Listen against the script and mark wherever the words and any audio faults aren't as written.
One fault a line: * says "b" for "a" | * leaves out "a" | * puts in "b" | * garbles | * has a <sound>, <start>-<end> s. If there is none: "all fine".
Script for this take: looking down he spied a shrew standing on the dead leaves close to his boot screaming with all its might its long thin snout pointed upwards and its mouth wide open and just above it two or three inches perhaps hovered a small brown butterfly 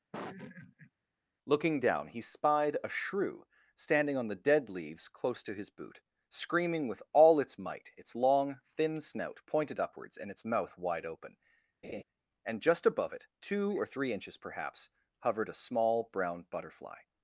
* has a laugh, 0.1-0.9 s
* has a laugh, 11.8-12.0 s